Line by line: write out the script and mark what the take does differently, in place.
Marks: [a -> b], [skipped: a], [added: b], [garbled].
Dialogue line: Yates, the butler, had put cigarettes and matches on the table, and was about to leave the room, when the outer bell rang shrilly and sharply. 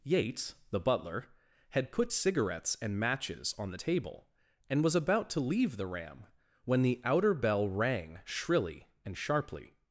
Yates, the butler, had put cigarettes and matches on the table, and was about to leave the [room, -> ram] when the outer bell rang shrilly and sharply.